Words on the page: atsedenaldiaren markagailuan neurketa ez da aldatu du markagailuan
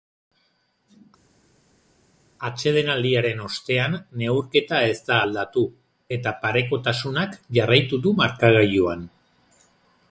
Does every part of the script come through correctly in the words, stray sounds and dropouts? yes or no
no